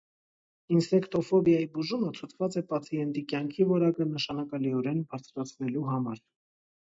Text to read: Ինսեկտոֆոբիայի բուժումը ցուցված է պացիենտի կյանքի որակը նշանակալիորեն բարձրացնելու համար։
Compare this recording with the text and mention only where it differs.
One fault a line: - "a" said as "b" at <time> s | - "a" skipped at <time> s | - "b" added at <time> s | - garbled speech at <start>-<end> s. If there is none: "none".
none